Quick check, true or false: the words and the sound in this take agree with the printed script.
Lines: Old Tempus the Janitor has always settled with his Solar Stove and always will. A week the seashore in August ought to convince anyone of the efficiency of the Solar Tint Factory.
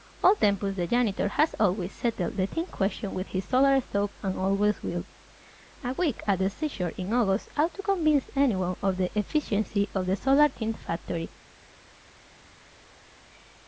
false